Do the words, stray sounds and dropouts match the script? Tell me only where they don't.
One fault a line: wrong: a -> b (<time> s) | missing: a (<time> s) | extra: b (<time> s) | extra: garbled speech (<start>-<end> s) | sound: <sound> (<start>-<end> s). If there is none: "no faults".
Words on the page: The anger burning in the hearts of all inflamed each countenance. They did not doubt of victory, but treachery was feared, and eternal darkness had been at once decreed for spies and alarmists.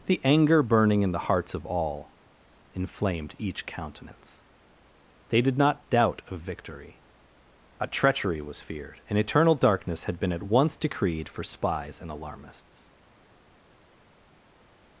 wrong: but -> a (7.8 s)